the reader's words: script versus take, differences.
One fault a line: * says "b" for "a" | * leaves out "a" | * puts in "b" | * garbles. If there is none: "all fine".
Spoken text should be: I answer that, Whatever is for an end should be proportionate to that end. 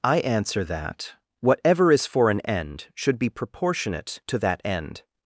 all fine